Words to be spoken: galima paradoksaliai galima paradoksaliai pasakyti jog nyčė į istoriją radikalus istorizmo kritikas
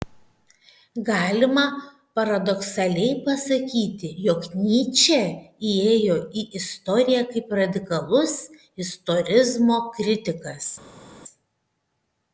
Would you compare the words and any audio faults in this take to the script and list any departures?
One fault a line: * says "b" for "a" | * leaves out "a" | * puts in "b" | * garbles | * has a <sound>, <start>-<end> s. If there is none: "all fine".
* leaves out "galima paradoksaliai"
* puts in "įėjo"
* puts in "kaip"